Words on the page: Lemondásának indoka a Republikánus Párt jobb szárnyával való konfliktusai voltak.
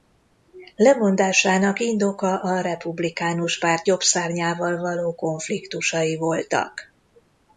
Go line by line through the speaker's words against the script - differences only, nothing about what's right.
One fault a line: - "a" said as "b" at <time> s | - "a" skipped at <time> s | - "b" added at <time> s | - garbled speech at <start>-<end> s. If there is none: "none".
none